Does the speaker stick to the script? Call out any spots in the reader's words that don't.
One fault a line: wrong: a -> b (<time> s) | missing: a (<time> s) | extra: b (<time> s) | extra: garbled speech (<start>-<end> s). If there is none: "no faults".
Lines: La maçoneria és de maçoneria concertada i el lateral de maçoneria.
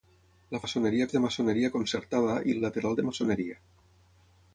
no faults